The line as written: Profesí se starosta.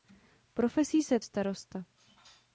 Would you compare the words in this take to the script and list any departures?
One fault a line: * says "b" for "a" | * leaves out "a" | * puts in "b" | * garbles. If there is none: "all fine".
all fine